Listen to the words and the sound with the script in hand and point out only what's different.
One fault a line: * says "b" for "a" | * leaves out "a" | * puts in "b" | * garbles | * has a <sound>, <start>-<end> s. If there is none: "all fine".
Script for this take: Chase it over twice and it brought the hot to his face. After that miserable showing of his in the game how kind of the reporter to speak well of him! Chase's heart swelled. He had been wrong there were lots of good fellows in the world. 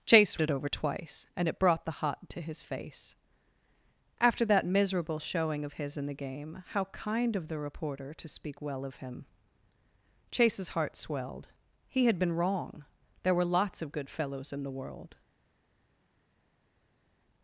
all fine